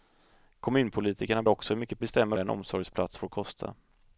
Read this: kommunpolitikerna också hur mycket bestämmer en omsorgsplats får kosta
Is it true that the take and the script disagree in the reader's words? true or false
false